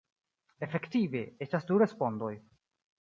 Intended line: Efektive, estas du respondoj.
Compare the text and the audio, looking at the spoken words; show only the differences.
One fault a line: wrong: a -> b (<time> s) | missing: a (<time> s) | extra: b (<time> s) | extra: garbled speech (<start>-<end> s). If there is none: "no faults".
no faults